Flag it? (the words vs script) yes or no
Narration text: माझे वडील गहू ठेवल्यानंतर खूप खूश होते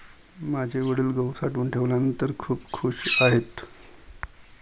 yes